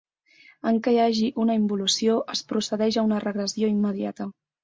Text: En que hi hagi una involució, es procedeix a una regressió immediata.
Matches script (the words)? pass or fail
pass